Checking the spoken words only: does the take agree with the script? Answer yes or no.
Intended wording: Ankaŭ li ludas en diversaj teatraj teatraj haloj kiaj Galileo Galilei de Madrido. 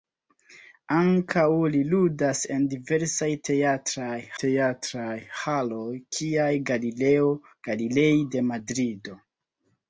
yes